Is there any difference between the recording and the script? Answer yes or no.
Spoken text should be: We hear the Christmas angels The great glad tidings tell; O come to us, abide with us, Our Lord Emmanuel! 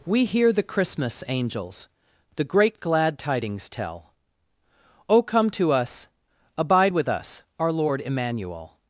no